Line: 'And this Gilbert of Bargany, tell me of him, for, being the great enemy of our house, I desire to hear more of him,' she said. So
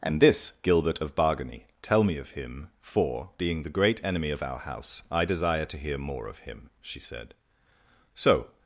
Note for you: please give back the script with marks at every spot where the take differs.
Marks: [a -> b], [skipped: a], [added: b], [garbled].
'And this Gilbert of Bargany, tell me of him, for, being the great enemy of our house, I desire to hear more of him,' she said. So